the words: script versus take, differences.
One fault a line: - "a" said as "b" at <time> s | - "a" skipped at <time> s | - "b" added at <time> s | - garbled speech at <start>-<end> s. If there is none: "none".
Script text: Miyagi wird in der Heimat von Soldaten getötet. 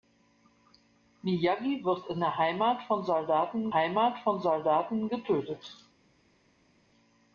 - "Heimat von Soldaten" added at 3.7 s